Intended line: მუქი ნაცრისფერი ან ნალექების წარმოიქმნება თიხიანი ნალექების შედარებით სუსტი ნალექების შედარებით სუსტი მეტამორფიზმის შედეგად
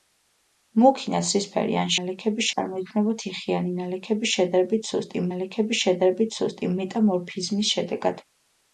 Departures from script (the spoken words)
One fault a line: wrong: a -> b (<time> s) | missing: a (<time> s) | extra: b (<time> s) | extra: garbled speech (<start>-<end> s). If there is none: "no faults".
no faults